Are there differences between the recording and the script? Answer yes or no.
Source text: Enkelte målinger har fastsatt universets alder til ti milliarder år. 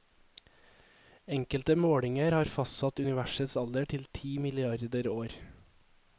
no